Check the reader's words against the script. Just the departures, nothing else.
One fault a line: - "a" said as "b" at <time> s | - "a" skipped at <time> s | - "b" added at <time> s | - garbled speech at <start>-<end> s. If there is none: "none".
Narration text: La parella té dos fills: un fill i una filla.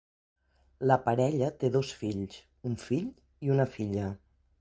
none